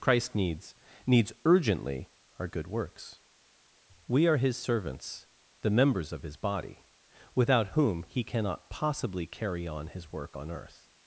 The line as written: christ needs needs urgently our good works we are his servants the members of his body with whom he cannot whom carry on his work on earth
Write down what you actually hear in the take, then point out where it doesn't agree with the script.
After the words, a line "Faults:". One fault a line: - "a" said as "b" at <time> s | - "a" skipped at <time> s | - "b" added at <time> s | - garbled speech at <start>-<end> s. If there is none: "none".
christ needs needs urgently our good works we are his servants the members of his body without whom he cannot possibly carry on his work on earth
Faults:
- "with" said as "without" at 7.4 s
- "whom" said as "possibly" at 8.7 s